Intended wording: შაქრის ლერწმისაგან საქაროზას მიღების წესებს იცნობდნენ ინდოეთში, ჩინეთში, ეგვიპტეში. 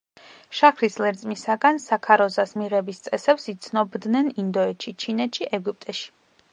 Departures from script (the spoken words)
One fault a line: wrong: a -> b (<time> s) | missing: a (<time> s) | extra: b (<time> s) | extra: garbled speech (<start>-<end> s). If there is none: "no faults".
no faults